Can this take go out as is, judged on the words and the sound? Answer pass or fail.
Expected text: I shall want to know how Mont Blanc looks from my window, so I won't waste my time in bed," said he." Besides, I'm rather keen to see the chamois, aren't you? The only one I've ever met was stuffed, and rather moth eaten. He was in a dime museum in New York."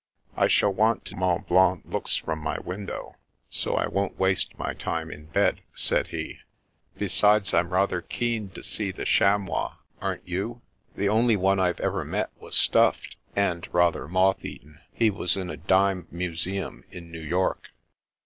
fail